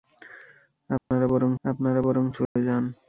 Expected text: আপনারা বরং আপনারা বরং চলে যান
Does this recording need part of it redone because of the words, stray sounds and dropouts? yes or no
yes